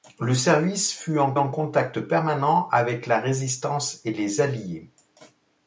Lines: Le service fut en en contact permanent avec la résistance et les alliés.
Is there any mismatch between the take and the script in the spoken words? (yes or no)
no